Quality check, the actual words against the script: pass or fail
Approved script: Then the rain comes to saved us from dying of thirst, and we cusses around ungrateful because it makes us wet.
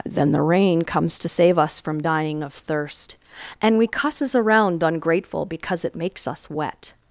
fail